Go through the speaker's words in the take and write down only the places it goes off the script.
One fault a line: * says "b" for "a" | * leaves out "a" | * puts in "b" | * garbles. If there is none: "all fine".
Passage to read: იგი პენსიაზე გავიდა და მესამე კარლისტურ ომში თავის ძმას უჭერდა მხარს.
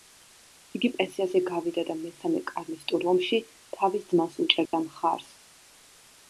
all fine